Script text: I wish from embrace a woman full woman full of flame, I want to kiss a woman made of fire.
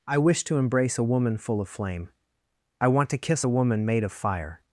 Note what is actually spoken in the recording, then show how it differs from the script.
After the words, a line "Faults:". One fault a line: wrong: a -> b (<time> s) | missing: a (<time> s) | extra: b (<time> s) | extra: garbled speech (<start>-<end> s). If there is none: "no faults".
I wish to embrace a woman full of flame, I want to kiss a woman made of fire.
Faults:
wrong: from -> to (0.5 s)
missing: woman full (1.6 s)